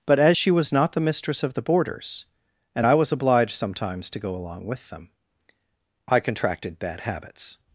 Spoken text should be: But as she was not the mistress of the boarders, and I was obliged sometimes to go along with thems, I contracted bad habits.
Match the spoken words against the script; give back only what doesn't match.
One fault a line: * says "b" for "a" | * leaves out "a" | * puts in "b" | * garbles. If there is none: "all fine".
* says "them" for "thems"